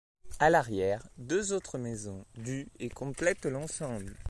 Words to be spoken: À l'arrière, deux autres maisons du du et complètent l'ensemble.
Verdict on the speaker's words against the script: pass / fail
fail